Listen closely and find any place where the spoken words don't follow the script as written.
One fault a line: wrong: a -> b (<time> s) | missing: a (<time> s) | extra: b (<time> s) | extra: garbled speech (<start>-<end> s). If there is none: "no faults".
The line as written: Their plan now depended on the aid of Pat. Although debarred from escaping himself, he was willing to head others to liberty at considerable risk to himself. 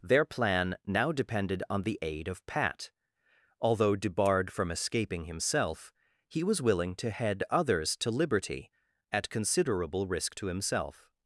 no faults